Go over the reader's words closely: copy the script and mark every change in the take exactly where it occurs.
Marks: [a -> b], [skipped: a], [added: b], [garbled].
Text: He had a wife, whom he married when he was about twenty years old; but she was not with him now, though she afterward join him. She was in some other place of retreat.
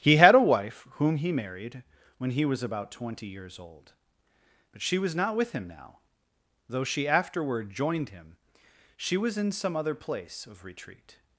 He had a wife, whom he married when he was about twenty years old; but she was not with him now, though she afterward [join -> joined] him. She was in some other place of retreat.